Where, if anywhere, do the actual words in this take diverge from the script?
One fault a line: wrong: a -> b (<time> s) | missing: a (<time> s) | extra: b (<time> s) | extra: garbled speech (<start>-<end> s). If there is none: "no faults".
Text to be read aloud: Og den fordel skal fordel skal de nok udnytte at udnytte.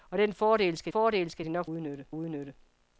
no faults